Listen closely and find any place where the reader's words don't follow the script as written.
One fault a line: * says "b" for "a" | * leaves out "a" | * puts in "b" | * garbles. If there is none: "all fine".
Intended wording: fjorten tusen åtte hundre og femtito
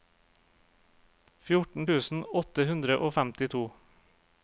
all fine